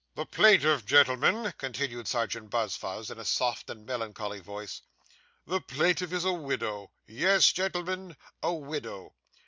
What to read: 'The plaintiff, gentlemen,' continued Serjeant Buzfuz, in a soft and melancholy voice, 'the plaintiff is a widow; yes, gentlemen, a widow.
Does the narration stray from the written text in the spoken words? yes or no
no